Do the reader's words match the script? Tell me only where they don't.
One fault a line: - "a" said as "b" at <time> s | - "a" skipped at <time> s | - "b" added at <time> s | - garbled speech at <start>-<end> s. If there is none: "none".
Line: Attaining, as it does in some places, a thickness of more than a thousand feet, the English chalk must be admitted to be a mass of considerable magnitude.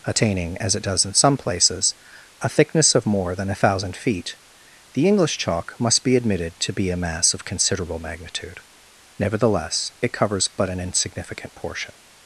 - "Nevertheless it covers but an insignificant portion" added at 9.2 s